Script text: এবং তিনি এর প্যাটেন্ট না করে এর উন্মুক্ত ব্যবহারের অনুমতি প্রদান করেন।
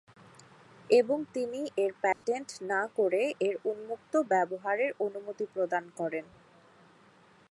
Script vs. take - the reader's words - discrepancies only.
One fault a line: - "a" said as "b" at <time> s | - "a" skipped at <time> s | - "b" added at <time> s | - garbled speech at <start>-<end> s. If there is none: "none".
none